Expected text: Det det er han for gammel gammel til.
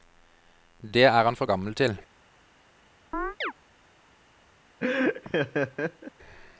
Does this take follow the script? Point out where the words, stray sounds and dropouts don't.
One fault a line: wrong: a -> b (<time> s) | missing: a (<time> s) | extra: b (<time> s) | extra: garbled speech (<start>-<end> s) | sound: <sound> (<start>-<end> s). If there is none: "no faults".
missing: det (1.0 s)
missing: gammel (1.7 s)
sound: chirp (3.1-3.5 s)
sound: laugh (4.8-6.1 s)